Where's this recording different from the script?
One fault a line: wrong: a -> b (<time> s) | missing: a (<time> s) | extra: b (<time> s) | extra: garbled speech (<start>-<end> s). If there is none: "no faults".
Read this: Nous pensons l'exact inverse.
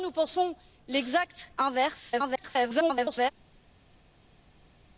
extra: garbled speech (2.1-3.3 s)